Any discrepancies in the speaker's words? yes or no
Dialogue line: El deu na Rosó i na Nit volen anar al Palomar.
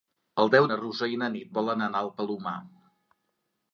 no